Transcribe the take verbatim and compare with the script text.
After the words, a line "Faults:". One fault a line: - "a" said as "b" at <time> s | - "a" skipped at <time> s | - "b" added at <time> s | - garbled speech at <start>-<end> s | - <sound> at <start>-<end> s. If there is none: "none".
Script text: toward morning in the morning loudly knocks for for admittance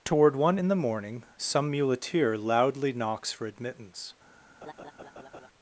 toward one in the morning some muleteer loudly knocks for admittance
Faults:
- "morning" said as "one" at 0.3 s
- "some muleteer" added at 1.3 s
- "for" skipped at 3.4 s
- laugh at 4.6-5.5 s